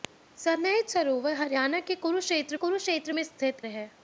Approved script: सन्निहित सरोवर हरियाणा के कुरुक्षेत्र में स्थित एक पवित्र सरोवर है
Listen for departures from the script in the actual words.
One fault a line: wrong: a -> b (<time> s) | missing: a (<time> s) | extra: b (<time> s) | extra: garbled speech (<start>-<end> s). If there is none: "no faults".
extra: कुरुक्षेत्र (2.5 s)
missing: एक पवित्र सरोवर (3.6 s)